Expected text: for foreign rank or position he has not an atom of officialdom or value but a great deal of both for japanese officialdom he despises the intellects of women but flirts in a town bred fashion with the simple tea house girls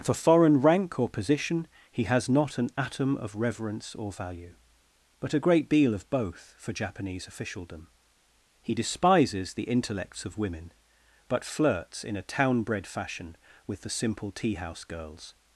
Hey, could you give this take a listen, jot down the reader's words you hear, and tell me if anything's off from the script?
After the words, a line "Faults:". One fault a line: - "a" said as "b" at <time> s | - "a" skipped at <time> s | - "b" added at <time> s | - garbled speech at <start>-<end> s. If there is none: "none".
for foreign rank or position he has not an atom of reverence or value but a great deal of both for japanese officialdom he despises the intellects of women but flirts in a town bred fashion with the simple tea house girls
Faults:
- "officialdom" said as "reverence" at 3.4 s